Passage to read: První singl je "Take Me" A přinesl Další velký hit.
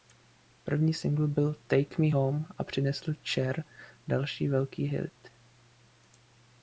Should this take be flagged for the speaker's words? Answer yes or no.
yes